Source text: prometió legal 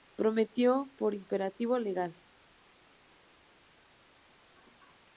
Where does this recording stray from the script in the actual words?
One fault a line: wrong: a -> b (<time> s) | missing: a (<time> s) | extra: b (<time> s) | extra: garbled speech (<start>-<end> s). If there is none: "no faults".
extra: por imperativo (1.0 s)